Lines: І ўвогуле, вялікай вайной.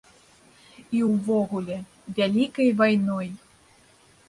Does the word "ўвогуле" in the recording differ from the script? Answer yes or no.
no